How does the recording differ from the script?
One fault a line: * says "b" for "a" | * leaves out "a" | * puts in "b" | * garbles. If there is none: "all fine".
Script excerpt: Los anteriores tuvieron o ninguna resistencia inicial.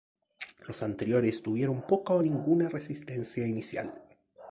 * puts in "poca"